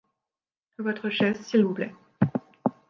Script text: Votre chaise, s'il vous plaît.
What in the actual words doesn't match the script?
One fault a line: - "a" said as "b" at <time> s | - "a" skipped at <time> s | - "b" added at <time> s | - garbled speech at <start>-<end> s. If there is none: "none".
none